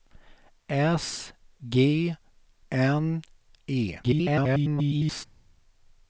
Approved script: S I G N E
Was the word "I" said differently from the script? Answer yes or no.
yes